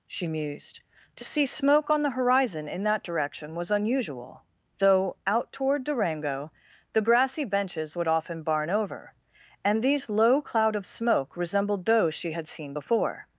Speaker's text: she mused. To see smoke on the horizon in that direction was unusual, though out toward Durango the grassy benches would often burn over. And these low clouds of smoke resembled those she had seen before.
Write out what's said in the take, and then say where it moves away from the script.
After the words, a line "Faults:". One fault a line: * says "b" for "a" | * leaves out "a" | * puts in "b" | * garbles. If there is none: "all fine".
she mused. To see smoke on the horizon in that direction was unusual, though out toward Durango the grassy benches would often barn over. And these low cloud of smoke resembled those she had seen before.
Faults:
* says "barn" for "burn"
* says "cloud" for "clouds"